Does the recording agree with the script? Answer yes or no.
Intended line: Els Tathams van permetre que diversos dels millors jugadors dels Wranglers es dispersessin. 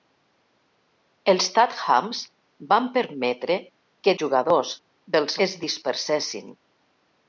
no